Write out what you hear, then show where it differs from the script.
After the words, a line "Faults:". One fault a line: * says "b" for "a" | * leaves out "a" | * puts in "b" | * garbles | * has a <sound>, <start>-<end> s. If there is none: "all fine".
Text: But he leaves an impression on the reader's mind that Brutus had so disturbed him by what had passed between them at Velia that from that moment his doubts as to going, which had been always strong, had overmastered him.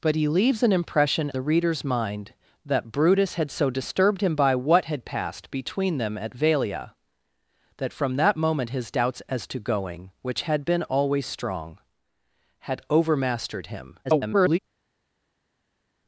But he leaves an impression the reader's mind that Brutus had so disturbed him by what had passed between them at Velia that from that moment his doubts as to going, which had been always strong, had overmastered him. [garbled]
Faults:
* leaves out "on"
* garbles